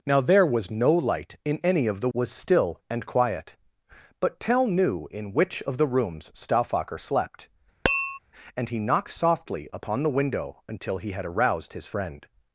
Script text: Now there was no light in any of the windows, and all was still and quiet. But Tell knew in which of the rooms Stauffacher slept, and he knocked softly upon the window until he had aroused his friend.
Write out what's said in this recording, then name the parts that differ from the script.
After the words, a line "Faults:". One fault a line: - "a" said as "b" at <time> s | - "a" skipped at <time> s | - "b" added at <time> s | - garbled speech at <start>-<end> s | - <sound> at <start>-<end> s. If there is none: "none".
Now there was no light in any of the was still and quiet. But Tell knew in which of the rooms Stauffacher slept, and he knocked softly upon the window until he had aroused his friend.
Faults:
- "windows and all" skipped at 2.1 s
- tap at 7.9-8.2 s